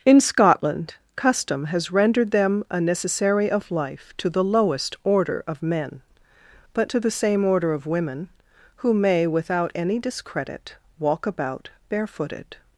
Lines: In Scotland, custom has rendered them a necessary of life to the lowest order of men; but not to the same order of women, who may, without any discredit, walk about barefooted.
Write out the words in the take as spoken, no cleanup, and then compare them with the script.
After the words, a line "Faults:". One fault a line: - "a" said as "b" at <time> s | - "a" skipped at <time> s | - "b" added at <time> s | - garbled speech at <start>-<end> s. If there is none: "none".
In Scotland, custom has rendered them a necessary of life to the lowest order of men; but to the same order of women, who may, without any discredit, walk about barefooted.
Faults:
- "not" skipped at 6.9 s